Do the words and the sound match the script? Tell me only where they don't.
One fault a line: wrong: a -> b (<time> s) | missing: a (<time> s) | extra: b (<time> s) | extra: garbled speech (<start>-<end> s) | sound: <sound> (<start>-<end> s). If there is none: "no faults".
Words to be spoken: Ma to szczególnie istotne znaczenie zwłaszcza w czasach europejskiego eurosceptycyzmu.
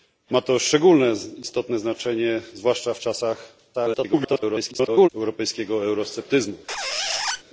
extra: garbled speech (3.7-5.1 s)
sound: squeak (6.7-7.4 s)